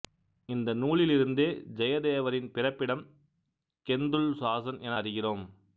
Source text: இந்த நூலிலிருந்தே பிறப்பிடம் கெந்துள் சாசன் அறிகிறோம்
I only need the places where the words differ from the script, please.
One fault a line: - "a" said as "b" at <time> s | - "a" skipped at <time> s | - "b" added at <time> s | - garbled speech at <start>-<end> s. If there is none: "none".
- "ஜெயதேவரின்" added at 1.7 s
- "என" added at 4.8 s